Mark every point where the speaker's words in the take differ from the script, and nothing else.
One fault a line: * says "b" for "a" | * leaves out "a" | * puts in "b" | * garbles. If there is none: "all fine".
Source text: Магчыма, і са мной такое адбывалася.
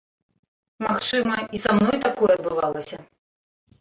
all fine